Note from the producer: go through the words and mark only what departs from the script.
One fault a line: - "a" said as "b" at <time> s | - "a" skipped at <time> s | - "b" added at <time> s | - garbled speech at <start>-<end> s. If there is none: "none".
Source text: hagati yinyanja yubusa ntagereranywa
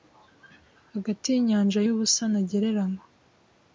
none